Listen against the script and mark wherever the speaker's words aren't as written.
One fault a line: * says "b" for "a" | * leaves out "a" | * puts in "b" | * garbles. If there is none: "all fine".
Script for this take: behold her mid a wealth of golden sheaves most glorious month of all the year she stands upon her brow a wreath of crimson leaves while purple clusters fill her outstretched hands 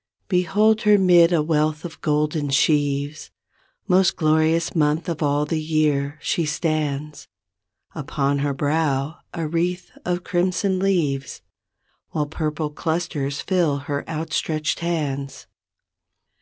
all fine